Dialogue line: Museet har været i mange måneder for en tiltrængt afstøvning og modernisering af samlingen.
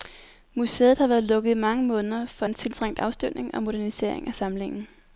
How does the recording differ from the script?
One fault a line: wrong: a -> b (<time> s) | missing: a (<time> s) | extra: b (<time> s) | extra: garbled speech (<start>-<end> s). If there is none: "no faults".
extra: lukket (1.2 s)